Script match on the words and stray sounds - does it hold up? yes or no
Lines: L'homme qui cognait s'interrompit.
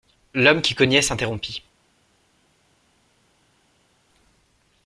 yes